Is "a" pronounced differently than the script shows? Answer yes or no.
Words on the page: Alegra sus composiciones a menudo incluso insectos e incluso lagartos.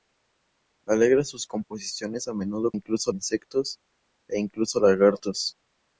no